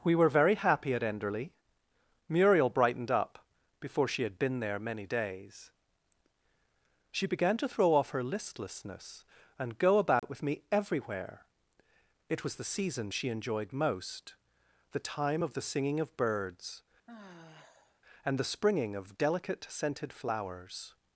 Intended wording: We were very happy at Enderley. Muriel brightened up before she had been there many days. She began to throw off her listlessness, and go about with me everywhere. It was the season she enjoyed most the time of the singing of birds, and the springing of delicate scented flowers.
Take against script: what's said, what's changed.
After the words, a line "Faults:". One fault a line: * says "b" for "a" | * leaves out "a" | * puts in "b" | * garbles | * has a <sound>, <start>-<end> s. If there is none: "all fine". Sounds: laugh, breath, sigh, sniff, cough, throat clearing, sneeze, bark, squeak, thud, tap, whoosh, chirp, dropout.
We were very happy at Enderley. Muriel brightened up before she had been there many days. She began to throw off her listlessness, and go about with me everywhere. It was the season she enjoyed most the time of the singing of birds, and the springing of delicate scented flowers.
Faults:
* has a dropout, 10.2-10.2 s
* has a sigh, 17.1-18.0 s